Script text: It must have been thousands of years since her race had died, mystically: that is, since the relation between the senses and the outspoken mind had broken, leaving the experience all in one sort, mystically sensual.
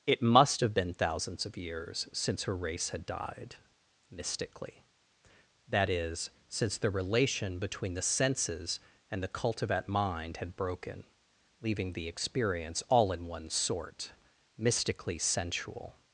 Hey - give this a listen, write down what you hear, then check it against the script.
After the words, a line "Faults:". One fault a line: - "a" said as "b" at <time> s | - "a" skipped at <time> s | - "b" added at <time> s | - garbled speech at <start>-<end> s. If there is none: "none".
It must have been thousands of years since her race had died, mystically: that is, since the relation between the senses and the cultivat mind had broken, leaving the experience all in one sort, mystically sensual.
Faults:
- "outspoken" said as "cultivat" at 9.3 s